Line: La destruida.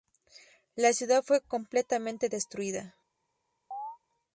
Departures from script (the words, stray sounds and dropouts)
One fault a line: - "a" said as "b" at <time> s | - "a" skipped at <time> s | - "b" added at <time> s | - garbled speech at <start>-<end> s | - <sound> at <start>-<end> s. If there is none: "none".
- "ciudad fue completamente" added at 0.9 s
- chirp at 3.7-4.0 s